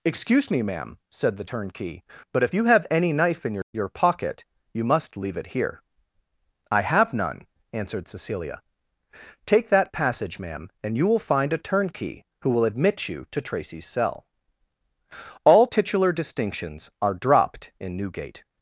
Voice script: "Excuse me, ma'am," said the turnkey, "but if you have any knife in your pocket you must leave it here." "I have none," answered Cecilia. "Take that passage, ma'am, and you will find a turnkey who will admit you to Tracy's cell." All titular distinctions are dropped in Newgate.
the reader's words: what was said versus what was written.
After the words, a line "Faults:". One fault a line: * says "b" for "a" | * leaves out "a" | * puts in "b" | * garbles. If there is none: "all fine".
"Excuse me, ma'am," said the turnkey, "but if you have any knife in your your pocket you must leave it here." "I have none," answered Cecilia. "Take that passage, ma'am, and you will find a turnkey who will admit you to Tracy's cell." All titular distinctions are dropped in Newgate.
Faults:
* puts in "your"